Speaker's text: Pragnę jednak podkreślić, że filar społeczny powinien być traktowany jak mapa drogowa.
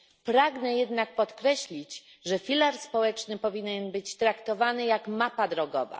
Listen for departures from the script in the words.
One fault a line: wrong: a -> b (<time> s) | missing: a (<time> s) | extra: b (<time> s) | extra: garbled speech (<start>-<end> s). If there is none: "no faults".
no faults